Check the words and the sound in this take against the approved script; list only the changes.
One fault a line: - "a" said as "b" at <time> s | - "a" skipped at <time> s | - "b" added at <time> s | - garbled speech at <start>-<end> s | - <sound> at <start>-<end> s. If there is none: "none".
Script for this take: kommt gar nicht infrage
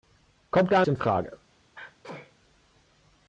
- "nicht" skipped at 0.8 s
- sneeze at 1.7-2.3 s